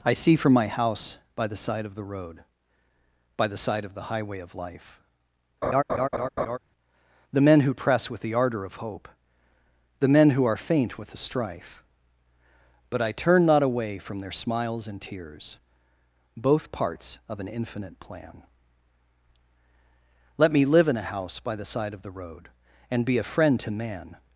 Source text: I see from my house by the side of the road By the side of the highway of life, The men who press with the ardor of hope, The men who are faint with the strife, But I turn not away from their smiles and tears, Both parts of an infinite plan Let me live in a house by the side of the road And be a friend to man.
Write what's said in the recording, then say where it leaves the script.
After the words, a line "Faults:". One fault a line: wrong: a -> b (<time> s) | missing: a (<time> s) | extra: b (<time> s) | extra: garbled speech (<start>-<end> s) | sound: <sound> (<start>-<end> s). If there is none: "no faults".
I see from my house by the side of the road By the side of the highway of life, The men who press with the ardor of hope, The men who are faint with the strife, But I turn not away from their smiles and tears, Both parts of an infinite plan Let me live in a house by the side of the road And be a friend to man.
Faults:
sound: laugh (5.6-6.6 s)